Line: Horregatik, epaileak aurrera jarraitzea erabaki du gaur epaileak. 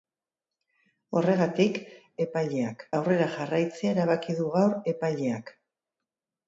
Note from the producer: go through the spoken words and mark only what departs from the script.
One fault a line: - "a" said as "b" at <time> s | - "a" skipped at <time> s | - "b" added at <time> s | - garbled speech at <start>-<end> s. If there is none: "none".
none